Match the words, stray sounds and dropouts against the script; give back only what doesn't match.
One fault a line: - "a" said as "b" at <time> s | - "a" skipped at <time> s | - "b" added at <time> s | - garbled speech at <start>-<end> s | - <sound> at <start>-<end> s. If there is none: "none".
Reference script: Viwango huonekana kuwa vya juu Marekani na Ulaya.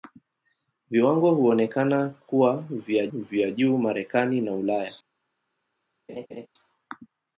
- "vya" added at 3.1 s
- laugh at 6.1-6.5 s